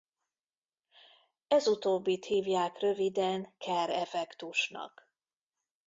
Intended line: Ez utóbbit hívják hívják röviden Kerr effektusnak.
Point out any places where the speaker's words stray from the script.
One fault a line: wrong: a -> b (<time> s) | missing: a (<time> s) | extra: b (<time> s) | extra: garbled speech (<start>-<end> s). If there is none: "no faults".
missing: hívják (2.8 s)